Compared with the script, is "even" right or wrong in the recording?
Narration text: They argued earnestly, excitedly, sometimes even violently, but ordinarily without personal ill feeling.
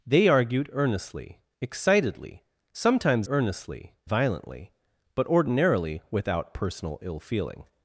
wrong